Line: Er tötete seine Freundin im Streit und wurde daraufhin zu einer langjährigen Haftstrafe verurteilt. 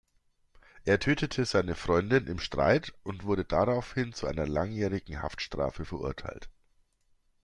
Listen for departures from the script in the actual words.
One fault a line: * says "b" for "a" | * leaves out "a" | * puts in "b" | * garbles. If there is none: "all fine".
all fine